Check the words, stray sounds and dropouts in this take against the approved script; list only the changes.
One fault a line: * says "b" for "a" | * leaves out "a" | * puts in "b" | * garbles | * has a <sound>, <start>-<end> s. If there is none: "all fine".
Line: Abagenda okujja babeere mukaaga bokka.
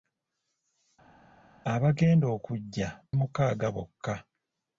* leaves out "babeere"